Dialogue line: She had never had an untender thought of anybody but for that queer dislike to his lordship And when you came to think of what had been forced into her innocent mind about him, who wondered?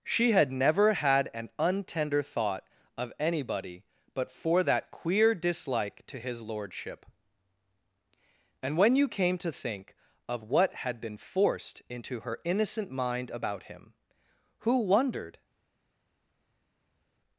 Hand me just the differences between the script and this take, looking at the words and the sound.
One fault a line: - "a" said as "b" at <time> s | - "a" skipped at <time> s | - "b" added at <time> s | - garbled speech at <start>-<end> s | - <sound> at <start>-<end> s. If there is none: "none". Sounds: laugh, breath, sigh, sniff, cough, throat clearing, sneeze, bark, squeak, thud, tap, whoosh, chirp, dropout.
none